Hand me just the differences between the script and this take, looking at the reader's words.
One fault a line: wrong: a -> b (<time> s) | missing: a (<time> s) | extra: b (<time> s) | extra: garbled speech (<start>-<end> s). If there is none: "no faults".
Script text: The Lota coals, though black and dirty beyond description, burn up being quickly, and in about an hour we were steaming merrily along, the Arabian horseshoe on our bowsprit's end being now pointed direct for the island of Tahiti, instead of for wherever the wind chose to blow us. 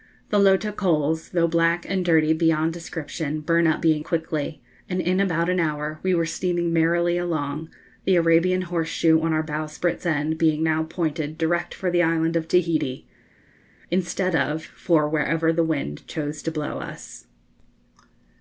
no faults